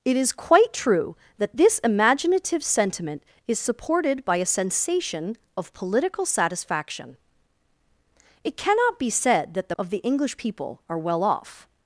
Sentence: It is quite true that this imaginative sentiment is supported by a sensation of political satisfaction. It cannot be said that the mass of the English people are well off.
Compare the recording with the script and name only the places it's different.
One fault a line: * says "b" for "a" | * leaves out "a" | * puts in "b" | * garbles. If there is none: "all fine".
* leaves out "mass"